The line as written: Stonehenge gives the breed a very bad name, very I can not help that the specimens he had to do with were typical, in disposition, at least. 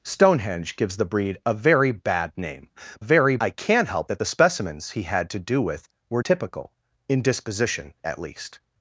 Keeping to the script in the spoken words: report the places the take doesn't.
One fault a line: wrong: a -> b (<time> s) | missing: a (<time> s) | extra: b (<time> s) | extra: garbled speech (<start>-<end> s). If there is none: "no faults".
no faults